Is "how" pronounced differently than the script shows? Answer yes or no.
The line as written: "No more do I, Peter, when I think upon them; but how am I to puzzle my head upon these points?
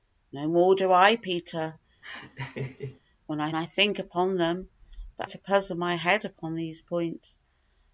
yes